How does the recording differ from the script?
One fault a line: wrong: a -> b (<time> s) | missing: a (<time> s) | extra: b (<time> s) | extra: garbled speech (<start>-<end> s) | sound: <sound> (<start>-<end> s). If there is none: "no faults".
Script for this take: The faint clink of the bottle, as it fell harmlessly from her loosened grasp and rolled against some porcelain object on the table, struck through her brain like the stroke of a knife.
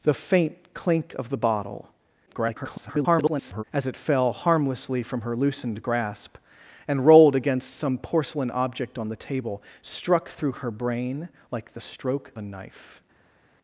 extra: garbled speech (2.3-3.6 s)
missing: of (12.3 s)